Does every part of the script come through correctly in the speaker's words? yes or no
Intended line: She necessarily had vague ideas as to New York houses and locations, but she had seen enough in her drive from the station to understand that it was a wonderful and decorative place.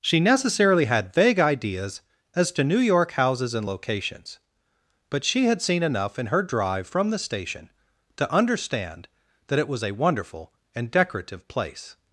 yes